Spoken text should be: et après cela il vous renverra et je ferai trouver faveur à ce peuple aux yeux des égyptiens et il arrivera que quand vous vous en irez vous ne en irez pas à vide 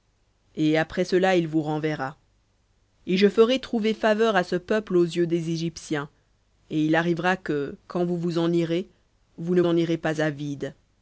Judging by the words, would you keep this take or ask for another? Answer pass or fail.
pass